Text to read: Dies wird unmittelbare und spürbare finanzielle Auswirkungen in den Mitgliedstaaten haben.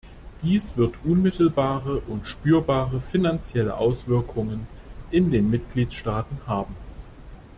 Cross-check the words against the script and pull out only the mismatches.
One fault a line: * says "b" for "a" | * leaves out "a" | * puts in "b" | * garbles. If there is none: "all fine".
all fine